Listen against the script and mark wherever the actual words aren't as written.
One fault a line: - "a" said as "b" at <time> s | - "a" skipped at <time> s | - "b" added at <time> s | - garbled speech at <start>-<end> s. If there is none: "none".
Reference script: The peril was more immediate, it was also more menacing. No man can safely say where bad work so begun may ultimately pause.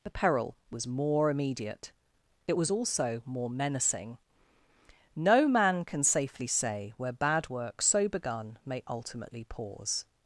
none